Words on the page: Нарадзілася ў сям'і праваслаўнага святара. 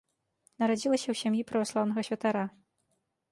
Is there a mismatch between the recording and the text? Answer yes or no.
no